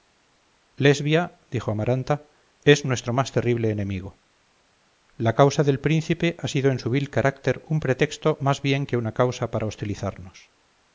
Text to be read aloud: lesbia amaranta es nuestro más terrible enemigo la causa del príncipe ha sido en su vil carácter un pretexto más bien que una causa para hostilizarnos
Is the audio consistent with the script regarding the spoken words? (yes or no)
no